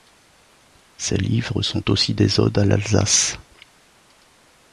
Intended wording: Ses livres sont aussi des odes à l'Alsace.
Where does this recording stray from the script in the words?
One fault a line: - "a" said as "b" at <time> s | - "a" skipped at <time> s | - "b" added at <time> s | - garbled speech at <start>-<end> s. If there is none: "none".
none